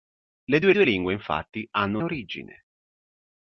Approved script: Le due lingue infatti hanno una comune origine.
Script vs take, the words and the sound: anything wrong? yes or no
yes